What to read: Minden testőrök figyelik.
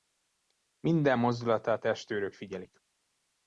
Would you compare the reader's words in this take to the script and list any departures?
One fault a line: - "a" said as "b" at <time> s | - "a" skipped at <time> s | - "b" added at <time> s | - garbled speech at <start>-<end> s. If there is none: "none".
- "mozdulatát" added at 1.2 s